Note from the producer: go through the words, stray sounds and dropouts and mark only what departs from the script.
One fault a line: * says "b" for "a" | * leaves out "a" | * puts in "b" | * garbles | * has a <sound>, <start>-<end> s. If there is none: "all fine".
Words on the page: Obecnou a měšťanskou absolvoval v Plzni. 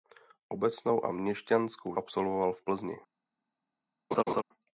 * has a laugh, 4.1-4.4 s